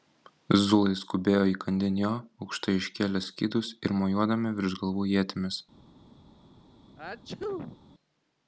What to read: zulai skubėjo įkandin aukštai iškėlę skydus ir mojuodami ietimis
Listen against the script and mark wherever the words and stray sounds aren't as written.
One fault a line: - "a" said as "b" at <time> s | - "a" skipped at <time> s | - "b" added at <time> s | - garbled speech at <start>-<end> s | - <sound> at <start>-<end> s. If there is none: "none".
- "jo" added at 2.0 s
- "virš galvų" added at 4.6 s
- sneeze at 7.0-7.8 s